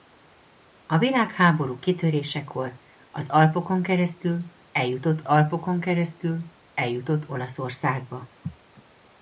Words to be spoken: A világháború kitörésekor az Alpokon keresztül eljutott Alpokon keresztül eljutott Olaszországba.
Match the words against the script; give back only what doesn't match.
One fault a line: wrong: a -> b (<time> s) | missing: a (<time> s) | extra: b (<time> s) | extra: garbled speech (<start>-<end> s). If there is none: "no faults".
no faults